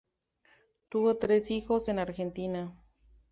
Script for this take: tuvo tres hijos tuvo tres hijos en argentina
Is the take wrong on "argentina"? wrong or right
right